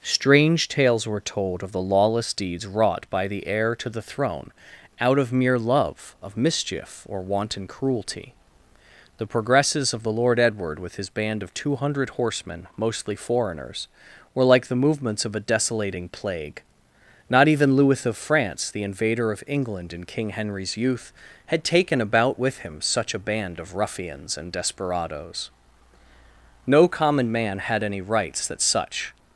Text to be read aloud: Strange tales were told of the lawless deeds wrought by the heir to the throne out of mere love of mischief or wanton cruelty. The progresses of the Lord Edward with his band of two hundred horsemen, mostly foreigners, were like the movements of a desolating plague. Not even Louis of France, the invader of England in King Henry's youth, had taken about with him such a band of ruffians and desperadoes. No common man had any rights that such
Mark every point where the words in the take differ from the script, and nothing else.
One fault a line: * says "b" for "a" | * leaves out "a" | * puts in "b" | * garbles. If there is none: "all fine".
all fine